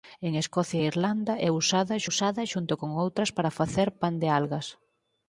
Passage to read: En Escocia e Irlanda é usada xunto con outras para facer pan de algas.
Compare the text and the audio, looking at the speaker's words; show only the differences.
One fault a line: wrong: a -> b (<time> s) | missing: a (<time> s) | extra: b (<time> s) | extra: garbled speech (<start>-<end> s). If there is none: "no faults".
extra: usada (2.1 s)